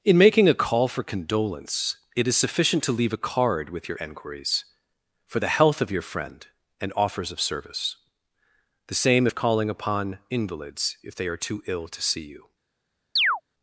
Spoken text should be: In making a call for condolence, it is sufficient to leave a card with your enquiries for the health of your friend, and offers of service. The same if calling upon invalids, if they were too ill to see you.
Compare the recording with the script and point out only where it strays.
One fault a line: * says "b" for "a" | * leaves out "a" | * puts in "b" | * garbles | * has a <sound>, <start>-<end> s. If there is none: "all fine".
* says "are" for "were"
* has a chirp, 13.2-13.4 s